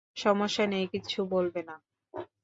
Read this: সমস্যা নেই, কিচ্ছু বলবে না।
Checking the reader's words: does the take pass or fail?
pass